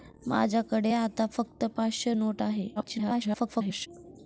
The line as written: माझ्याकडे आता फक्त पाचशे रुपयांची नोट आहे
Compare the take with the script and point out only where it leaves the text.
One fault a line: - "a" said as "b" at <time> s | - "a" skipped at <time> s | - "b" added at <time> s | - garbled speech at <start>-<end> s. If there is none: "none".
- "रुपयांची" skipped at 2.1 s
- garbled speech at 2.8-3.9 s